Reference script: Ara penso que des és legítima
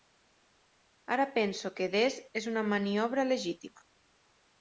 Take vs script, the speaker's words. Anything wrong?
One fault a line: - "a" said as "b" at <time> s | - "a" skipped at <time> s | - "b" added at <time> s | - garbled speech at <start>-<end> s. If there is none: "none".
- "una maniobra" added at 2.5 s